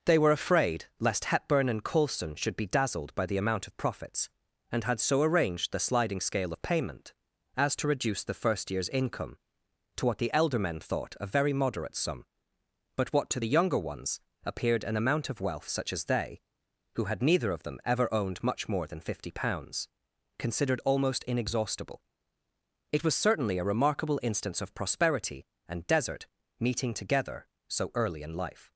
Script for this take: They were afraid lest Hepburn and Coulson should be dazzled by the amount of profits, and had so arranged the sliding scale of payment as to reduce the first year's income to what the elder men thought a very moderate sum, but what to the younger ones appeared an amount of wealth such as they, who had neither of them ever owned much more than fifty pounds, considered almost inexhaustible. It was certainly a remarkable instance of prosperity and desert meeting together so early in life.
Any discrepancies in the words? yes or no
no